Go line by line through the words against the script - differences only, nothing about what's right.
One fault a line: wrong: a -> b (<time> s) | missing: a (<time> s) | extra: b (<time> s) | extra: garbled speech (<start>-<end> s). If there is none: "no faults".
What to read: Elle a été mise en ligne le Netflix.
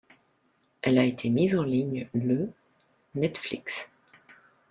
no faults